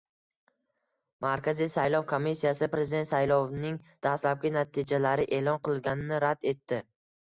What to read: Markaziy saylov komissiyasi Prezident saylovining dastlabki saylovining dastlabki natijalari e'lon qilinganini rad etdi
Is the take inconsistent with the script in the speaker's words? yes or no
yes